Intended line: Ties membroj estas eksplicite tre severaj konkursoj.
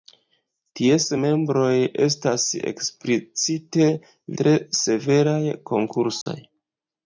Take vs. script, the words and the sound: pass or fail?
fail